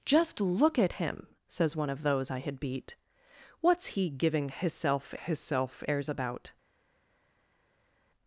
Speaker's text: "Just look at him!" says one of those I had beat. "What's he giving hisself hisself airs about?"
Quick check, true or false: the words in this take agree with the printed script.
true